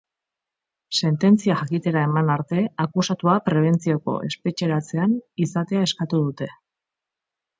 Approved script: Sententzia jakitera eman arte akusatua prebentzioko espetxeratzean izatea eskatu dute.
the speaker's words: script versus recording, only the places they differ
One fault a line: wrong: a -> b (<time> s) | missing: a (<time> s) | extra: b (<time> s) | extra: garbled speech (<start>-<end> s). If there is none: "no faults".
no faults